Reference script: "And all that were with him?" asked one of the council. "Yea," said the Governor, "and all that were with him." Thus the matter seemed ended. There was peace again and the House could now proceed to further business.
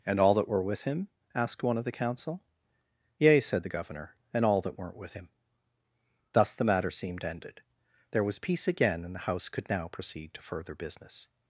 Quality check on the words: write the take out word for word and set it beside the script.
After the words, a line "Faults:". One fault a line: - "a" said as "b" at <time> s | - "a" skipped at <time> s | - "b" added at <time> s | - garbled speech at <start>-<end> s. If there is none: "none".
"And all that were with him?" asked one of the council. "Yea," said the Governor, "and all that weren't with him." Thus the matter seemed ended. There was peace again and the House could now proceed to further business.
Faults:
- "were" said as "weren't" at 4.8 s